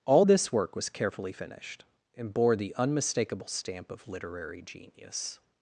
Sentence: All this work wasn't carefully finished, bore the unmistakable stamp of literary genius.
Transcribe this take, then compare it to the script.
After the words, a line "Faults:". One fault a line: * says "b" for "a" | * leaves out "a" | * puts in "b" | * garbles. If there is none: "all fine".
All this work was carefully finished, and bore the unmistakable stamp of literary genius.
Faults:
* says "was" for "wasn't"
* puts in "and"